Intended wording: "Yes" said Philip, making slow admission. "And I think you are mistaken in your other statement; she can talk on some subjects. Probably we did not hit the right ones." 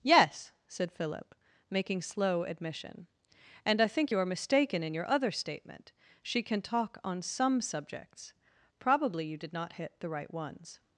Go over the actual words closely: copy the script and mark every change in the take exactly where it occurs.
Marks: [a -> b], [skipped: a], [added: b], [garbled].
"Yes" said Philip, making slow admission. "And I think you are mistaken in your other statement; she can talk on some subjects. Probably [we -> you] did not hit the right ones."